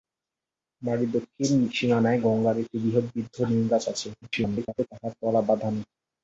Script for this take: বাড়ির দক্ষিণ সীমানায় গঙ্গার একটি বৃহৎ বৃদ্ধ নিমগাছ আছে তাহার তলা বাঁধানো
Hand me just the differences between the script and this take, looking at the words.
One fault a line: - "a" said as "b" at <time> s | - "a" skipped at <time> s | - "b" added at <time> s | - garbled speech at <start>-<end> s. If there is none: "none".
- garbled speech at 4.2-4.9 s